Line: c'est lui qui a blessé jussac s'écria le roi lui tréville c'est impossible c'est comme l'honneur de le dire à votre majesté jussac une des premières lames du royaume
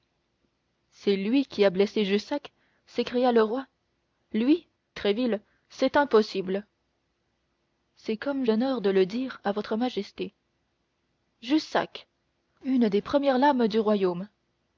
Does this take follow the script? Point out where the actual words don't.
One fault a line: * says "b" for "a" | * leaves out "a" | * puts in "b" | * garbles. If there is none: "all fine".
all fine